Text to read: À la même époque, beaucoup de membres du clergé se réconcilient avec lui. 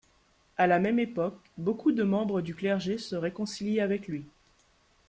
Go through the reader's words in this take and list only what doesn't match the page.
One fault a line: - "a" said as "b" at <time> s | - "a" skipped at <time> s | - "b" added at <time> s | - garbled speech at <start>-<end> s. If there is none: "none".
none